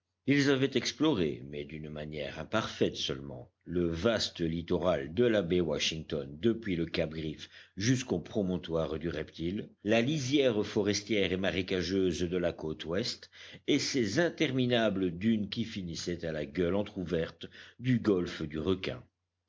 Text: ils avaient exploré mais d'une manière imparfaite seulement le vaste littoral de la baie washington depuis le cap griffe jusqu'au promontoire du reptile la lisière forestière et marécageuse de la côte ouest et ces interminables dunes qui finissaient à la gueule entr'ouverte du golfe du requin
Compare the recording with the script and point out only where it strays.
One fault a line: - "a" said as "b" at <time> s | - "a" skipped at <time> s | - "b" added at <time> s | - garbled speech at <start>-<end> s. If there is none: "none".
none